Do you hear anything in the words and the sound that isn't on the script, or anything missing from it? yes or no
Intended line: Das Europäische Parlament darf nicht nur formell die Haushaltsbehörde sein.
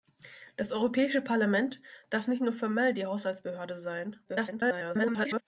yes